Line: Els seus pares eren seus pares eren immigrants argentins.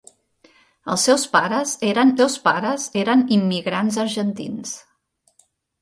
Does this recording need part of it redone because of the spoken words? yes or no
no